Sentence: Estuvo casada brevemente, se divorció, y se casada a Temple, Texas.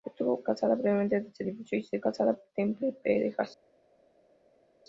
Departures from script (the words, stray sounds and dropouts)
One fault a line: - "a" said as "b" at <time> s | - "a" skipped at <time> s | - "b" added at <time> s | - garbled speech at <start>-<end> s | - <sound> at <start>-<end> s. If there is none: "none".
none